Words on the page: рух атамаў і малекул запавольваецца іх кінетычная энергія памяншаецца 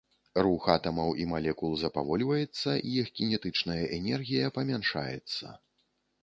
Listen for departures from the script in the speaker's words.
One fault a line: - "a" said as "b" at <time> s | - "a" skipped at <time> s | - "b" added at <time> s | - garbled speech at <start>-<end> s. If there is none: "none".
none